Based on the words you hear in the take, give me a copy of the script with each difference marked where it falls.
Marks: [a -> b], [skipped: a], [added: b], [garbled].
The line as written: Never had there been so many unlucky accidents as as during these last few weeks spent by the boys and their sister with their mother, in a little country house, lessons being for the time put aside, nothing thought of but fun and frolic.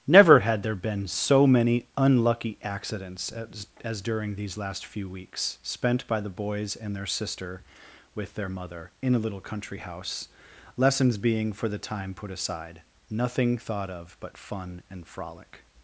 Never had there been so many unlucky accidents as as during these last few weeks spent by the boys and their sister with their mother, in a little country house, lessons being for the time put aside, nothing thought of but fun and frolic.